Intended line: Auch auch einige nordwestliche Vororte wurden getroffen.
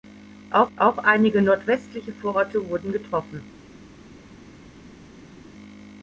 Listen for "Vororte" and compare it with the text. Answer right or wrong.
right